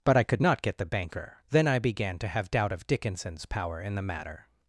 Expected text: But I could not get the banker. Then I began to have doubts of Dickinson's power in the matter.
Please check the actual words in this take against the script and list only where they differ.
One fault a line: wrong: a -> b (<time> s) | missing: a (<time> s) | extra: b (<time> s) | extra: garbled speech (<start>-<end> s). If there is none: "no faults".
wrong: doubts -> doubt (2.5 s)